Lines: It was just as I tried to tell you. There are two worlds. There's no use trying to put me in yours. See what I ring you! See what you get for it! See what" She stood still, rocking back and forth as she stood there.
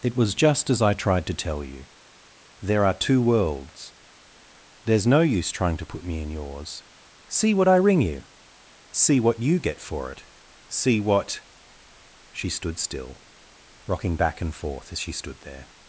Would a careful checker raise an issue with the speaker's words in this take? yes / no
no